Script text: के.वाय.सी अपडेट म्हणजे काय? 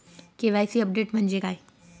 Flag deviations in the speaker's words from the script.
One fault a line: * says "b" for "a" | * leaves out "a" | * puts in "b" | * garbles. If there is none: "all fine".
all fine